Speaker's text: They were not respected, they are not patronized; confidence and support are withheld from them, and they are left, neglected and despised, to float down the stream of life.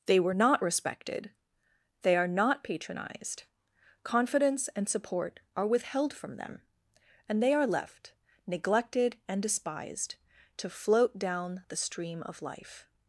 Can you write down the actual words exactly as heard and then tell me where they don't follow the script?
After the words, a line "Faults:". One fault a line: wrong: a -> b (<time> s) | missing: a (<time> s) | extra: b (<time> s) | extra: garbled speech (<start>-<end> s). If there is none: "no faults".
They were not respected, they are not patronized; confidence and support are withheld from them, and they are left, neglected and despised, to float down the stream of life.
Faults:
no faults